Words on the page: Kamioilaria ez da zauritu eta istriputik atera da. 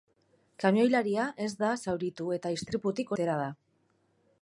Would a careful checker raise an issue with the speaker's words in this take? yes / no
no